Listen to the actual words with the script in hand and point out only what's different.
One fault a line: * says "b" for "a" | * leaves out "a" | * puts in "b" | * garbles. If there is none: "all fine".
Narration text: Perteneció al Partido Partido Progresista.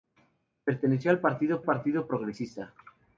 all fine